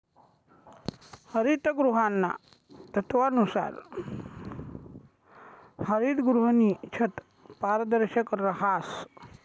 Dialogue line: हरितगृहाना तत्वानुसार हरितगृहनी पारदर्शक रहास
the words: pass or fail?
fail